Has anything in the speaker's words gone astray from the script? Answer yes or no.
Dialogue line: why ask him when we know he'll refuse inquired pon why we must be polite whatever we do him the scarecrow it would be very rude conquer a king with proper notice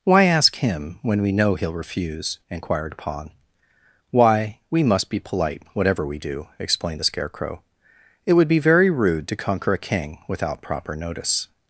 yes